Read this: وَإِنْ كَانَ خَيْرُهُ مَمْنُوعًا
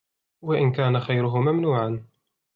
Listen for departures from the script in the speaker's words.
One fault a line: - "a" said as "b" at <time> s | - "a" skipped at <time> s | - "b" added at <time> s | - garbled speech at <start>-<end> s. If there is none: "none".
none